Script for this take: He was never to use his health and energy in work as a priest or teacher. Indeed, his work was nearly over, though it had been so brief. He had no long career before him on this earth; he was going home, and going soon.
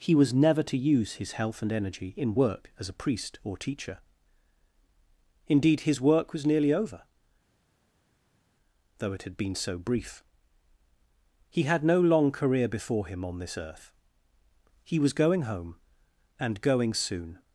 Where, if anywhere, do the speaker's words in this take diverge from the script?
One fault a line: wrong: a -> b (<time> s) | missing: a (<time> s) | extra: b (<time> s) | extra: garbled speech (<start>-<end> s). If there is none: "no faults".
no faults